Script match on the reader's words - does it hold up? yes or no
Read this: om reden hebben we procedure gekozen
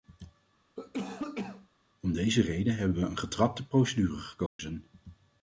no